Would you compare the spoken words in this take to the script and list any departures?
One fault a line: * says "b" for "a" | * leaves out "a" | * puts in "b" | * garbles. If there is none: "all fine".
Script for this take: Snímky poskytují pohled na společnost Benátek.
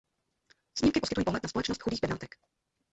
* puts in "chudých"